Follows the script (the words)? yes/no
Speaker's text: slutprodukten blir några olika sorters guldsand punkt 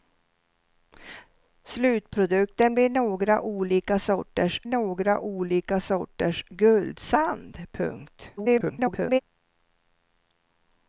no